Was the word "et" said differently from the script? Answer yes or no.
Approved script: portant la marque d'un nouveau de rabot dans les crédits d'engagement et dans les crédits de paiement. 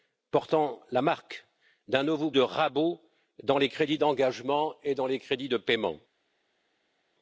no